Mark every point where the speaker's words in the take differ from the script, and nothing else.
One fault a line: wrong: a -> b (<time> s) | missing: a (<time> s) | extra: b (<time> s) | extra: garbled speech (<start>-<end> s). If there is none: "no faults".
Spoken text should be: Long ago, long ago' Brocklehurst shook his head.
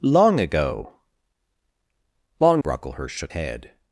missing: ago (2.6 s)
missing: his (3.3 s)